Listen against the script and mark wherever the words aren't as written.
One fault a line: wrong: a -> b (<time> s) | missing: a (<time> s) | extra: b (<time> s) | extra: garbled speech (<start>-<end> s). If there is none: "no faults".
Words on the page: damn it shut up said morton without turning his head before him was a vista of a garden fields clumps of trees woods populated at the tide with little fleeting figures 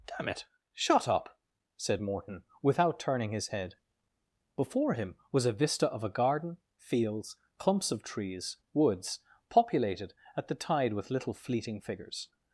no faults